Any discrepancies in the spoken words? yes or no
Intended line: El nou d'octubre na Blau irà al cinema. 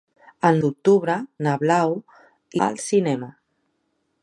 yes